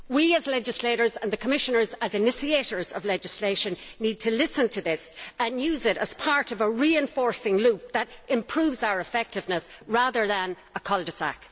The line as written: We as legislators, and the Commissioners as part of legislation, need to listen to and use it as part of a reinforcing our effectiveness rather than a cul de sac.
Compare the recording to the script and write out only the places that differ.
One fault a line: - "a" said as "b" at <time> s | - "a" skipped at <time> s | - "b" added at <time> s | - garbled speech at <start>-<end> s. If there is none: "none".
- "part" said as "initiators" at 2.1 s
- "this" added at 4.8 s
- "loop that improves" added at 7.6 s